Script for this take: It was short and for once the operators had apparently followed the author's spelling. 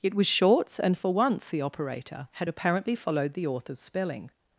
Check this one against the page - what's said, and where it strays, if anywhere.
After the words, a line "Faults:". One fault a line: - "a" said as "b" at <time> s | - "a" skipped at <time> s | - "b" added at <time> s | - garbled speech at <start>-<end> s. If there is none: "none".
It was shorts and for once the operator had apparently followed the author's spelling.
Faults:
- "short" said as "shorts" at 0.3 s
- "operators" said as "operator" at 1.6 s